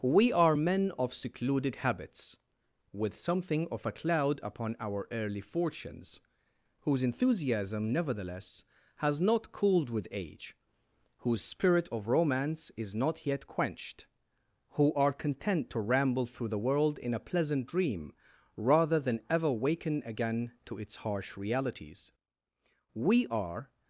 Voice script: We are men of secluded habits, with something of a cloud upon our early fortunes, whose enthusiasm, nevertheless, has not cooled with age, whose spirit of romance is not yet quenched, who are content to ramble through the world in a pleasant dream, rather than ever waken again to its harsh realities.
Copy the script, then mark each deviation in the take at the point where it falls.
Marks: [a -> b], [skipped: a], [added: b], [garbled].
We are men of secluded habits, with something of a cloud upon our early fortunes, whose enthusiasm, nevertheless, has not cooled with age, whose spirit of romance is not yet quenched, who are content to ramble through the world in a pleasant dream, rather than ever waken again to its harsh realities. [added: We are]